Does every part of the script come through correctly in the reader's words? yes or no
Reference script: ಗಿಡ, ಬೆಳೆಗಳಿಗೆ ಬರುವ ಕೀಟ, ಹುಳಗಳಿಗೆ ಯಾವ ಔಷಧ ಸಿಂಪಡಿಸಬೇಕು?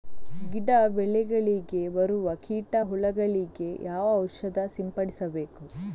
yes